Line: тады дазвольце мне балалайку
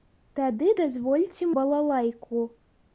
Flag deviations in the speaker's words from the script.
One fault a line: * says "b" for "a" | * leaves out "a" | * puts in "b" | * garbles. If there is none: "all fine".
* leaves out "мне"